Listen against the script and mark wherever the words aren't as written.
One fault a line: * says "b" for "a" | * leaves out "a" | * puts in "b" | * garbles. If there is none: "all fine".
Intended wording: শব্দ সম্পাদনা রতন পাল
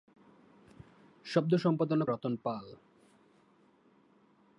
all fine